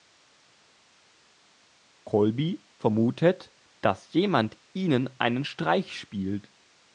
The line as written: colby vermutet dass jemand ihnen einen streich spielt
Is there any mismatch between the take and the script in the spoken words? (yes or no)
no